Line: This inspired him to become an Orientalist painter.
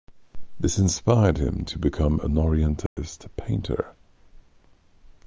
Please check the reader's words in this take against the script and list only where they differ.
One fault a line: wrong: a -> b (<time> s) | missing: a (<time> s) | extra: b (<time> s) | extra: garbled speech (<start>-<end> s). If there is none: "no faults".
no faults